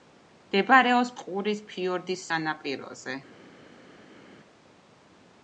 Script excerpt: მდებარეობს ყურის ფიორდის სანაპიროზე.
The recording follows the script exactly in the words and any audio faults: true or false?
true